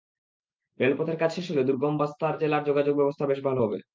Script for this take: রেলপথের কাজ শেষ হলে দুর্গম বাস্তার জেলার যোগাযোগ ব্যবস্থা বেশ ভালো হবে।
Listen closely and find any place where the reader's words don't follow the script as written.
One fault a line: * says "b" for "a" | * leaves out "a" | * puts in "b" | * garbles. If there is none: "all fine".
all fine